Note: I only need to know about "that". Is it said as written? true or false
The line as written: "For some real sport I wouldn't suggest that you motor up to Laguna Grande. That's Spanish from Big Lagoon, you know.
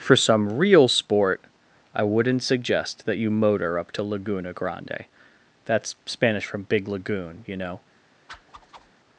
true